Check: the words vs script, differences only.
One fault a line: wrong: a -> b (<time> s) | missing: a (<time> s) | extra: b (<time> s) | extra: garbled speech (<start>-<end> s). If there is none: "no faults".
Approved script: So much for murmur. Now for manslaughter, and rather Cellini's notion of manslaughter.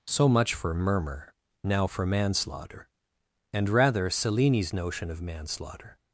no faults